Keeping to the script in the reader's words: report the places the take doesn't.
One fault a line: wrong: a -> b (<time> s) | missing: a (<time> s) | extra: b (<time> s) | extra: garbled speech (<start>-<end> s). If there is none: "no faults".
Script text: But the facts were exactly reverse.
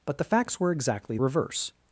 no faults